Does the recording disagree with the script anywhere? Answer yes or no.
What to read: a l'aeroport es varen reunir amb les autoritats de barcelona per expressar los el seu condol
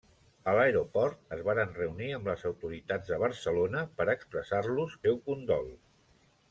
yes